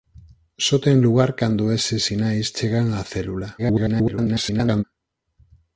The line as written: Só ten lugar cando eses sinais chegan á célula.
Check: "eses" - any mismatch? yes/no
no